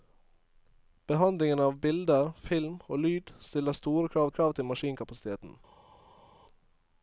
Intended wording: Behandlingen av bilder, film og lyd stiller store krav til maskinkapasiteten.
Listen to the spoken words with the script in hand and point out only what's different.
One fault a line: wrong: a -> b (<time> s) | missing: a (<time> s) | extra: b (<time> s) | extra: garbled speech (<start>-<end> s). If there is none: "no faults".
extra: krav (4.3 s)